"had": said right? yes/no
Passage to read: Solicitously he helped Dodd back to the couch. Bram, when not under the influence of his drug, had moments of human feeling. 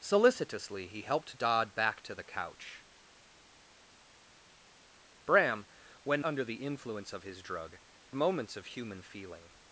no